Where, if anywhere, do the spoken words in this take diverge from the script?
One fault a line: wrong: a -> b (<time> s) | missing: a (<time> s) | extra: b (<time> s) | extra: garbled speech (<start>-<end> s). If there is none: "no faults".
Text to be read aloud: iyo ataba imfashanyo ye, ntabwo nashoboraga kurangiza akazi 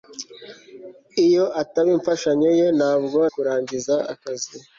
missing: nashoboraga (3.2 s)